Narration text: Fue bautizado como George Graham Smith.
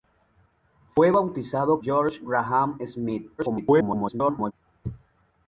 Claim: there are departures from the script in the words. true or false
true